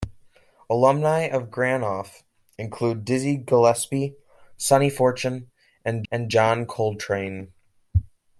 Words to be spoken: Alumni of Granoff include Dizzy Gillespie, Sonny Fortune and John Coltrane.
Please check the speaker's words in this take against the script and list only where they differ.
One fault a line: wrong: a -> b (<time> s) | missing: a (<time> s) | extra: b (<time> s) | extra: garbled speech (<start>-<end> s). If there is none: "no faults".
extra: and (6.1 s)